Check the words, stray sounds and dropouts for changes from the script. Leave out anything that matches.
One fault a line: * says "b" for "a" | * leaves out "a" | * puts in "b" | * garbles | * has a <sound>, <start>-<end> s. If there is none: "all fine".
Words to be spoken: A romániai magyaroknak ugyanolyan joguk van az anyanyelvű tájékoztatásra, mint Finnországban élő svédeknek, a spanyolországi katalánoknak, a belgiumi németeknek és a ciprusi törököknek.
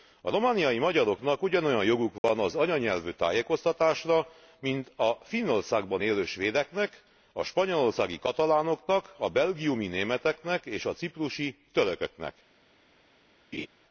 * has a dropout, 2.2-2.2 s
* puts in "a"
* has a laugh, 13.5-13.7 s